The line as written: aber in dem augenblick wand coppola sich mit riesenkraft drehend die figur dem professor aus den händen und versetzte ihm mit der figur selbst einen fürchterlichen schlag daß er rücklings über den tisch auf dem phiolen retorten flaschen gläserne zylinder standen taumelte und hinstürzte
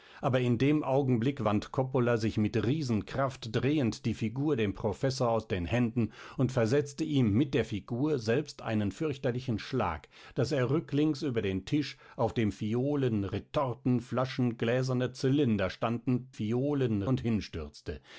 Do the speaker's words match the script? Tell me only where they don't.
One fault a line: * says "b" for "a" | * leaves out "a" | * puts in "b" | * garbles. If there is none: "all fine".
* says "phiolen" for "taumelte"